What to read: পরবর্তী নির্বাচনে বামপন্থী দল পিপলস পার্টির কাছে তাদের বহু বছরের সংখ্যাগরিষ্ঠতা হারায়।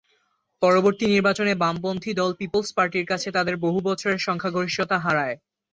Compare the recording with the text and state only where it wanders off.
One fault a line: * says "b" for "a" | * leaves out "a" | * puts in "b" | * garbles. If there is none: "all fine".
all fine